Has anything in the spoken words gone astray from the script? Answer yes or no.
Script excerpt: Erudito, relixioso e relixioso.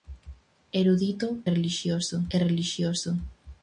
no